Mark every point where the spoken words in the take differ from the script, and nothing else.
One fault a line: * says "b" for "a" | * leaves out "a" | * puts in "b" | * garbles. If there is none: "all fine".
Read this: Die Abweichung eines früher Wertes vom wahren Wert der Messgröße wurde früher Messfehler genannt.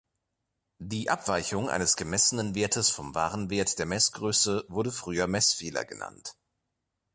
* says "gemessenen" for "früher"